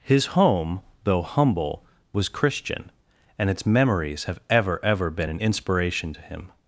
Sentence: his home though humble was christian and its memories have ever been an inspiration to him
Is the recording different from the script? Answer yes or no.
yes